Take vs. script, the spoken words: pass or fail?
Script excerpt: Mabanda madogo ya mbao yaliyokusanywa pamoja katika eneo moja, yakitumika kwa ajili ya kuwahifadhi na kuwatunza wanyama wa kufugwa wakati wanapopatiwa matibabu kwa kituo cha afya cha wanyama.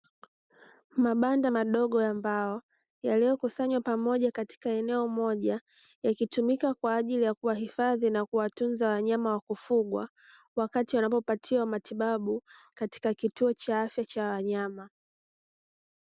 fail